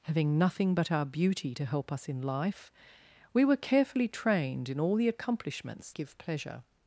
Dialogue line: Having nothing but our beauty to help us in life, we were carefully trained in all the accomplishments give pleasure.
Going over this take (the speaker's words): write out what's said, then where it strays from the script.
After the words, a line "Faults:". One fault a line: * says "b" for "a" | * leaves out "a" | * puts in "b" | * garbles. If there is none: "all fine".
Having nothing but our beauty to help us in life, we were carefully trained in all the accomplishments give pleasure.
Faults:
all fine